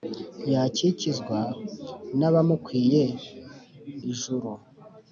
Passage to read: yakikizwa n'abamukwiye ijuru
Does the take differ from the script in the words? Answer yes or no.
no